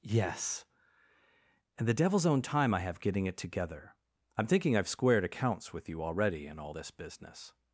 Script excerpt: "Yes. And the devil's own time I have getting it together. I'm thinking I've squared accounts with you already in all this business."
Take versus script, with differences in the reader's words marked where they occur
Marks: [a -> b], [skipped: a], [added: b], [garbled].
"Yes. And the devil's own time I have getting it together. I'm thinking I've squared accounts with you already in all this business."